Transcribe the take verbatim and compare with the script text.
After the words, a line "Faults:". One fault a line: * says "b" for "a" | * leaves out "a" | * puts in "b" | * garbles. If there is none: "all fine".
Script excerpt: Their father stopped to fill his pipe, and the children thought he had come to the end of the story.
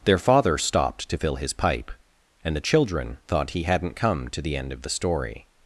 Their father stopped to fill his pipe, and the children thought he hadn't come to the end of the story.
Faults:
* says "hadn't" for "had"